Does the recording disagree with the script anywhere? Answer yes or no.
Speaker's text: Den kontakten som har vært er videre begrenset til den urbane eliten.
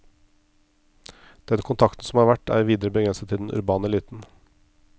no